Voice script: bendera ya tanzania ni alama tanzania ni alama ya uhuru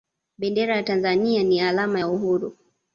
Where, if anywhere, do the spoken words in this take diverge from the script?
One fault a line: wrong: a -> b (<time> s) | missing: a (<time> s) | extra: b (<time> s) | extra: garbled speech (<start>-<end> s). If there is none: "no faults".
missing: tanzania ni alama (2.0 s)